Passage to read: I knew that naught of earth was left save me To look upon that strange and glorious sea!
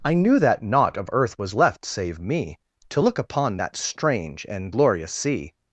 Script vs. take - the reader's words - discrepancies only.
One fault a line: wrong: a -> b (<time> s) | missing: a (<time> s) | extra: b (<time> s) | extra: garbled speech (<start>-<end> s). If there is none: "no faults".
no faults